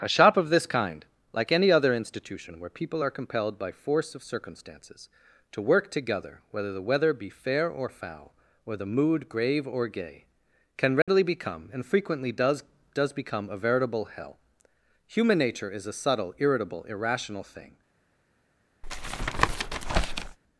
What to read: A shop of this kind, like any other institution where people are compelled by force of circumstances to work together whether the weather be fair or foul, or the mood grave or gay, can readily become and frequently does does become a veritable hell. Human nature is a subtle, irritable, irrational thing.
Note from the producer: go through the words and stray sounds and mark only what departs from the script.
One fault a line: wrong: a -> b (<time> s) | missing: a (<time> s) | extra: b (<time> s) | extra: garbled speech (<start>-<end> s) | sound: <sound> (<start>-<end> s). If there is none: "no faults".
sound: dropout (11.0-11.1 s)
sound: tap (18.8-20.4 s)